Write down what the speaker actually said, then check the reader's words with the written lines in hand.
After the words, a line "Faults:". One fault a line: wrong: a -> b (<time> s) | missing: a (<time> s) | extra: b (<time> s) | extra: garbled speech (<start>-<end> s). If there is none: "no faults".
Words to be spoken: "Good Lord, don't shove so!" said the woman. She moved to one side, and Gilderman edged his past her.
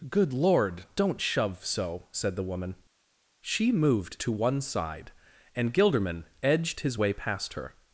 "Good Lord, don't shove so!" said the woman. She moved to one side, and Gilderman edged his way past her.
Faults:
extra: way (7.0 s)